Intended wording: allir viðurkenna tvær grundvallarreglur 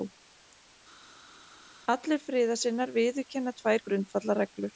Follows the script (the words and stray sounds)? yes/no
no